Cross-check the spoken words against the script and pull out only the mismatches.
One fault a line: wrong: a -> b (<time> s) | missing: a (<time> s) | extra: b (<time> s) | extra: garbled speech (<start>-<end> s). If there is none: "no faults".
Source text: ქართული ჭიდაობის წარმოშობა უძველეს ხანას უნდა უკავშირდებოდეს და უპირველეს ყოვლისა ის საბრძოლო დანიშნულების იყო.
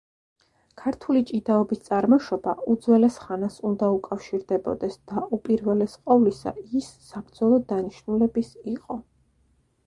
no faults